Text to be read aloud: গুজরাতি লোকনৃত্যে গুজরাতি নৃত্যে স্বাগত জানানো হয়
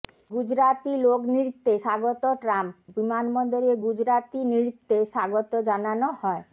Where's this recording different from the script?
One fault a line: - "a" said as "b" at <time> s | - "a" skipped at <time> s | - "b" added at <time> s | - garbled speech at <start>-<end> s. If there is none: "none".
- "স্বাগত ট্রাম্প বিমানবন্দরে" added at 1.8 s